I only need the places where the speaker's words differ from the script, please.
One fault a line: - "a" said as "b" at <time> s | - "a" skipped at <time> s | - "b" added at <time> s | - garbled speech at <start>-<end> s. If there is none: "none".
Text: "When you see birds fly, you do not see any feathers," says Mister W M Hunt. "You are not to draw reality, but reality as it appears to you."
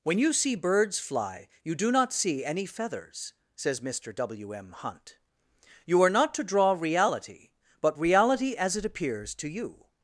none